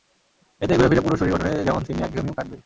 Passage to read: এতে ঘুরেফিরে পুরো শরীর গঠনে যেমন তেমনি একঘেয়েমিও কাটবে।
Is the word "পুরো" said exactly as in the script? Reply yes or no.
yes